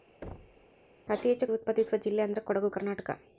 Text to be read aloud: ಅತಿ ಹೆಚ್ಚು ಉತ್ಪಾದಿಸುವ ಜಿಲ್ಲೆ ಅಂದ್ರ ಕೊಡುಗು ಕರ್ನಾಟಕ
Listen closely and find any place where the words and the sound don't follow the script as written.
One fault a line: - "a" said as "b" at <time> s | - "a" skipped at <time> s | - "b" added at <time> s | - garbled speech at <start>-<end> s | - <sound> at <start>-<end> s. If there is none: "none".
- thud at 0.2-0.7 s